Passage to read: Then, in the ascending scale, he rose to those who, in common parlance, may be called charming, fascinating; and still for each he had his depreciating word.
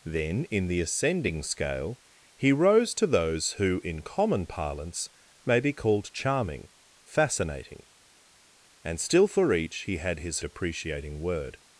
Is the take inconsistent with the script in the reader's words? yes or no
no